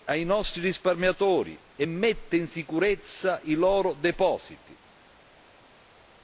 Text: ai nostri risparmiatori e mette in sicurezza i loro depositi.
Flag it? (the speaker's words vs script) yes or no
no